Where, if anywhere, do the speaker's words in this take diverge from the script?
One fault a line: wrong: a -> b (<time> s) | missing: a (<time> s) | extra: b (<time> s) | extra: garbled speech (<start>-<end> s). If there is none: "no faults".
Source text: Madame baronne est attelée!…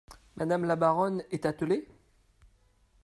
extra: la (0.6 s)